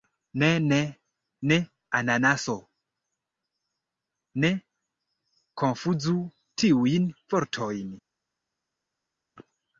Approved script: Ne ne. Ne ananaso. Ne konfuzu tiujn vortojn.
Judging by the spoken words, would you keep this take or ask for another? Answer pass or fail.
pass